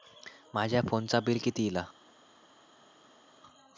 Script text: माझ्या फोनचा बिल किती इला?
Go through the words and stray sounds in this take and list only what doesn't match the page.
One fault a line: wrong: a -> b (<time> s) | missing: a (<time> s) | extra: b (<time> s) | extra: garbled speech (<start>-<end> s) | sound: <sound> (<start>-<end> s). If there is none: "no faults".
no faults